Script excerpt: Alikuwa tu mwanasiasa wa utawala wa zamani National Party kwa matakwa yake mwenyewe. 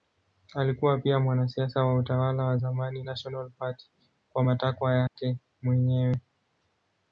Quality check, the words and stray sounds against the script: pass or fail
fail